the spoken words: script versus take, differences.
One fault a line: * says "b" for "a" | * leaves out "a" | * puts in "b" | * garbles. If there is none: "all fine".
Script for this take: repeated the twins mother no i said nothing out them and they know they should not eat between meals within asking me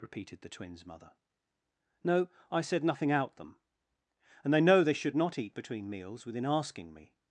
all fine